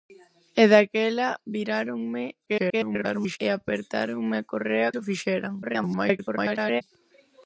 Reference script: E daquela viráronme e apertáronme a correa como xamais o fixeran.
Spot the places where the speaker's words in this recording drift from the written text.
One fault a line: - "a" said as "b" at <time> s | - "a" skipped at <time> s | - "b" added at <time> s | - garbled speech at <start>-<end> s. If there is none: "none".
- garbled speech at 2.5-3.4 s
- "como xamais" skipped at 4.9 s
- garbled speech at 5.6-6.8 s